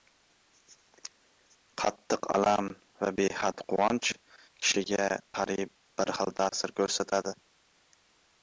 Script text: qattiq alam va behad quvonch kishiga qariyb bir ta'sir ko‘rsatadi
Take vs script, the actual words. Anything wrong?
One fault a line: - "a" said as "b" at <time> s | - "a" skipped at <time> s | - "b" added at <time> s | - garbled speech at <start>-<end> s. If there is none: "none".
- "xil" added at 6.2 s